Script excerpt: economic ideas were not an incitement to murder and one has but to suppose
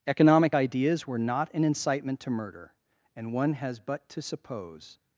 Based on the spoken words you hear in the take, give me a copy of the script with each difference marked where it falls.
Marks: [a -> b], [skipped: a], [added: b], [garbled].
economic ideas were not an incitement to murder and one has but to suppose